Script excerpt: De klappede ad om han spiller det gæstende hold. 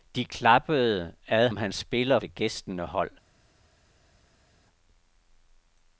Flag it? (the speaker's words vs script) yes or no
no